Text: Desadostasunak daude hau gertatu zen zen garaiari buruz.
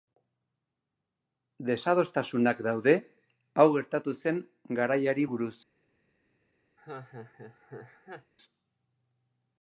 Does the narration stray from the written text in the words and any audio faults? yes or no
yes